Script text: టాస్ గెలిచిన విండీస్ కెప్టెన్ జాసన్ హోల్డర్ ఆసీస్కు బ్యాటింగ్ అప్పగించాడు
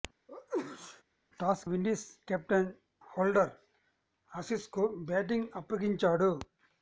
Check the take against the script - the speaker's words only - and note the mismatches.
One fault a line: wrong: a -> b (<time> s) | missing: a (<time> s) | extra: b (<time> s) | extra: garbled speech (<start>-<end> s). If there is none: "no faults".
missing: గెలిచిన (1.6 s)
missing: జాసన్ (2.7 s)